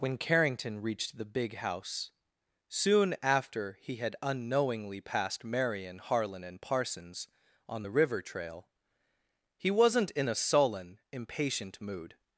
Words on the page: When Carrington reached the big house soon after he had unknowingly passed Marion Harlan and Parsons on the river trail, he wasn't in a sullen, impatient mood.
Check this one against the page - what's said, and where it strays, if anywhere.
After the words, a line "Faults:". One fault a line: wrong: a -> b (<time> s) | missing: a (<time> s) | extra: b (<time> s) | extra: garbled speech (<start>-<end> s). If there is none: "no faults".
When Carrington reached the big house soon after he had unknowingly passed Marion Harlan and Parsons on the river trail, he wasn't in a sullen, impatient mood.
Faults:
no faults